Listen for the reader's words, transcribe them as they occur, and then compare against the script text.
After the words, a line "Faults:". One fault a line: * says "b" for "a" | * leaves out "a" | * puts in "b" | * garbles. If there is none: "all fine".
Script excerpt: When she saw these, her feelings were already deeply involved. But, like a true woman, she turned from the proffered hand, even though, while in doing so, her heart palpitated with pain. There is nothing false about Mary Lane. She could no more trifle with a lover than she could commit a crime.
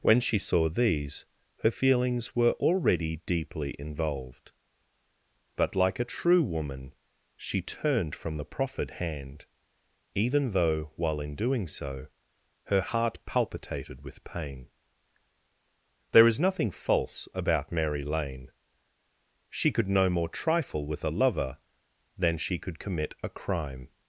When she saw these, her feelings were already deeply involved. But, like a true woman, she turned from the proffered hand, even though, while in doing so, her heart palpitated with pain. There is nothing false about Mary Lane. She could no more trifle with a lover than she could commit a crime.
Faults:
all fine